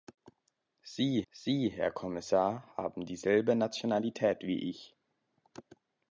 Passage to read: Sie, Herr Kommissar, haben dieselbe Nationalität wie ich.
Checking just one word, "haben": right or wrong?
right